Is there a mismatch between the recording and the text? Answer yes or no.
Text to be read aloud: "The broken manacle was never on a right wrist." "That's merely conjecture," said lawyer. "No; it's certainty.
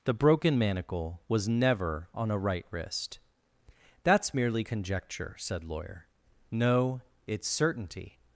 no